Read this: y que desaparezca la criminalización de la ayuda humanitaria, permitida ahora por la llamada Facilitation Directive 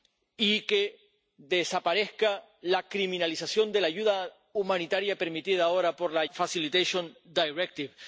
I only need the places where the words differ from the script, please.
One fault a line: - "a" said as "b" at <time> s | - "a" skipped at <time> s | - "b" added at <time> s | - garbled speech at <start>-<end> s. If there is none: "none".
- "llamada" skipped at 6.2 s